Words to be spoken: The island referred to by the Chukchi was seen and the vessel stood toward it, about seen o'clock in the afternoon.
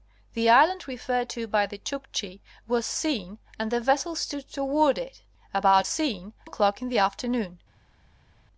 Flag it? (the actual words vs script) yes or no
no